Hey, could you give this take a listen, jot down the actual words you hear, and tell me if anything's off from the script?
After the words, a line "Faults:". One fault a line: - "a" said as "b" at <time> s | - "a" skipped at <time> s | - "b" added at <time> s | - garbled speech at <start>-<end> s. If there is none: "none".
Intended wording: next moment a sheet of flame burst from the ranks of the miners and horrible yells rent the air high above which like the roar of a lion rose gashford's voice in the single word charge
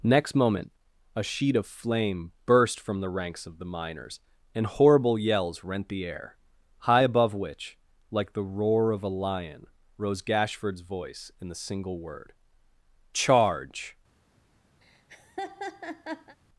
next moment a sheet of flame burst from the ranks of the miners and horrible yells rent the air high above which like the roar of a lion rose gashford's voice in the single word charge
Faults:
none